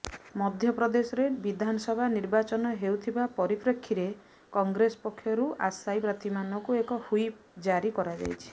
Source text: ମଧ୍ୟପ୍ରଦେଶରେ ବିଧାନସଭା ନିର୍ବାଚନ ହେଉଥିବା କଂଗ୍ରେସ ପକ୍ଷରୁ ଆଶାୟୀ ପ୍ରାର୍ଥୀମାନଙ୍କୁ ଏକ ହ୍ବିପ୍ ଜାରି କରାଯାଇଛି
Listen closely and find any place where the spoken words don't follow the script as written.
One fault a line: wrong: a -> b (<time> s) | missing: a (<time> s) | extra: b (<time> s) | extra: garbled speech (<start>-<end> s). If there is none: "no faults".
extra: ପରିପ୍ରେକ୍ଷୀରେ (3.4 s)